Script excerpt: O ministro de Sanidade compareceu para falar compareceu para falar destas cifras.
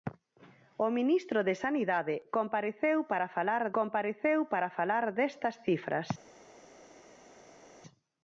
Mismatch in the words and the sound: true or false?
false